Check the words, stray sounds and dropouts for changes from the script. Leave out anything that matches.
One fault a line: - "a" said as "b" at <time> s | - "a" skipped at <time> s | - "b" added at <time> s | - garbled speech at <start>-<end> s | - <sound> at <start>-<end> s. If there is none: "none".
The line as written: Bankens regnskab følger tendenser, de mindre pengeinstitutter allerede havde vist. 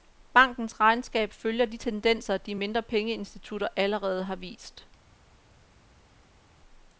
- "de" added at 1.6 s
- "havde" said as "har" at 4.2 s